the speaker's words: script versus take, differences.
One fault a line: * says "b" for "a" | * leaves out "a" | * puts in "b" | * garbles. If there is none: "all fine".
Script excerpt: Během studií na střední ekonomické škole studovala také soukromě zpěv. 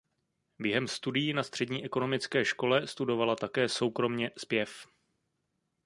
all fine